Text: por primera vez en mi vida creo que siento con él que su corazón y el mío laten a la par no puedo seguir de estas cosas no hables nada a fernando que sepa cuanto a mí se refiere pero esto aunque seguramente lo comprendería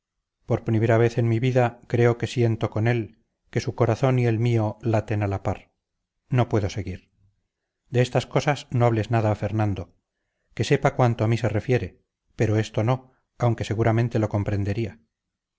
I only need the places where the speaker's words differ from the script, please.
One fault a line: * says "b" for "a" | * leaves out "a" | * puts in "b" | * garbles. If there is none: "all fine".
* puts in "no"